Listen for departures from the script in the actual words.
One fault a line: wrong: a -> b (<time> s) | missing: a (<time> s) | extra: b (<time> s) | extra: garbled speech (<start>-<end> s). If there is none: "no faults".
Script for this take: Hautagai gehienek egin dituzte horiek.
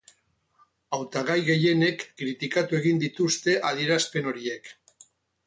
extra: kritikatu (2.2 s)
extra: adierazpen (3.7 s)